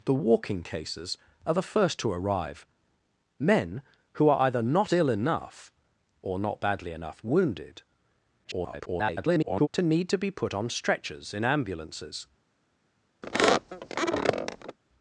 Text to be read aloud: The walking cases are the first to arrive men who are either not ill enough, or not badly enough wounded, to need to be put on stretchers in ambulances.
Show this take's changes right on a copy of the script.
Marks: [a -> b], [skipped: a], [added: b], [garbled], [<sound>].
The walking cases are the first to arrive men who are either not ill enough, or not badly enough wounded, [garbled] to need to be put on stretchers in ambulances. [squeak]